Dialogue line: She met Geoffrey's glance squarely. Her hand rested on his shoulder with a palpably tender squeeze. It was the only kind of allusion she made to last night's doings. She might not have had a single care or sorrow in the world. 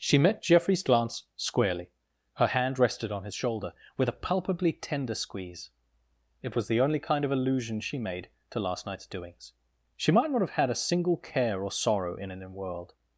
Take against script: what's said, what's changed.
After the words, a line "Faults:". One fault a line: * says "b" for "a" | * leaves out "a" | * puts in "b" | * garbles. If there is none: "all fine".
She met Geoffrey's glance squarely. Her hand rested on his shoulder with a palpably tender squeeze. It was the only kind of allusion she made to last night's doings. She might not have had a single care or sorrow in an world.
Faults:
* says "an" for "the"